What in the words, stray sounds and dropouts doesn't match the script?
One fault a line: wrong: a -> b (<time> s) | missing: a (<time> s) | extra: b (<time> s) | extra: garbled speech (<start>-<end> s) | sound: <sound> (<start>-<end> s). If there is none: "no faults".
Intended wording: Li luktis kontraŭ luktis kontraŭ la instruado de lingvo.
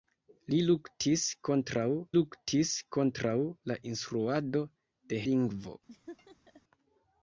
sound: laugh (5.9-6.6 s)